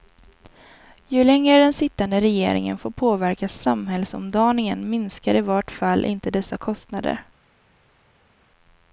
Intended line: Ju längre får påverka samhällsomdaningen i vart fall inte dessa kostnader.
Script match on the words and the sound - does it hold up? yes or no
no